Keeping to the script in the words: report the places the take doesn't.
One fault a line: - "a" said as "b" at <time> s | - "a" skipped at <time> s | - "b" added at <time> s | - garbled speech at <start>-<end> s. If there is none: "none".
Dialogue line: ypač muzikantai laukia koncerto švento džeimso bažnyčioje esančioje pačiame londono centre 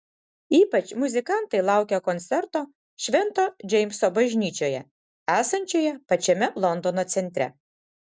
none